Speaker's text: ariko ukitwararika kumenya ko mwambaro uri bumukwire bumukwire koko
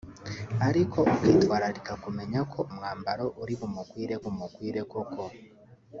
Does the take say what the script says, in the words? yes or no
yes